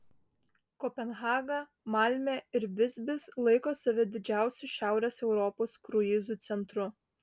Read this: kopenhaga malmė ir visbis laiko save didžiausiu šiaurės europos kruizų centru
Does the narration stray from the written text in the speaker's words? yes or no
no